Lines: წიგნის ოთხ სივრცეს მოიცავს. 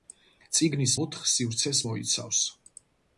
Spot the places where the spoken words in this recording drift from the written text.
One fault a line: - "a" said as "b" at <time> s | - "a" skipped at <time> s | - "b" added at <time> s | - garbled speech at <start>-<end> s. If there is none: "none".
none